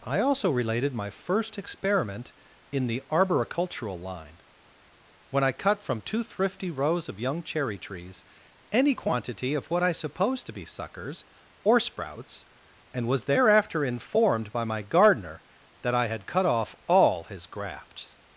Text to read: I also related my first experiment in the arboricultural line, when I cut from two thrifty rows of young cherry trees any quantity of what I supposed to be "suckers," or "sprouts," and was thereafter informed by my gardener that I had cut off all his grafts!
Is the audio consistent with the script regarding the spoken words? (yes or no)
yes